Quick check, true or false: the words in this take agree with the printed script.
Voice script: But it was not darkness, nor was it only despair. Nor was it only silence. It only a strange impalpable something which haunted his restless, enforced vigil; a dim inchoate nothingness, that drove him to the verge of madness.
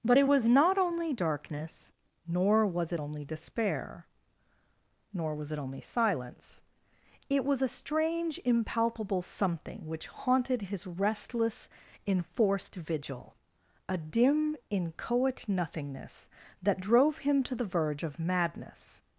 false